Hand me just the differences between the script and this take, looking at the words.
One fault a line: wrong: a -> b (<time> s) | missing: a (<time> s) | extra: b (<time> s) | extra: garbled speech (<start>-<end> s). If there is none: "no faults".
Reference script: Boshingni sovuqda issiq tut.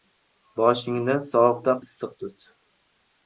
no faults